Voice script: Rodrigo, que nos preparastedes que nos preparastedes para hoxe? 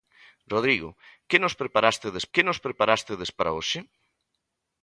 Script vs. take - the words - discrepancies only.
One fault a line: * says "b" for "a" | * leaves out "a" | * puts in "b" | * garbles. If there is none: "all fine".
all fine